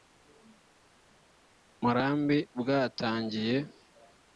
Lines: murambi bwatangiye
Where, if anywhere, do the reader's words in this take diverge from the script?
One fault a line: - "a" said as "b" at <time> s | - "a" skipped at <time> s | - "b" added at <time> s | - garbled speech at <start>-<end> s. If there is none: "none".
none